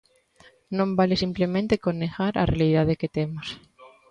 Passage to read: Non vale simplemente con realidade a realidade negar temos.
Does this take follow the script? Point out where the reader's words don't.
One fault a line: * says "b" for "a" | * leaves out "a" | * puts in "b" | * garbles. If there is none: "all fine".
* says "negar" for "realidade"
* says "que" for "negar"